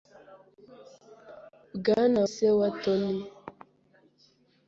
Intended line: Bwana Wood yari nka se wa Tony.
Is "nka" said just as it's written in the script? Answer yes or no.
no